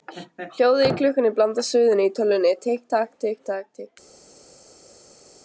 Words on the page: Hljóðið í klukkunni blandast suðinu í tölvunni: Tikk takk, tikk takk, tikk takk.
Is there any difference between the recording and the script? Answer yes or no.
no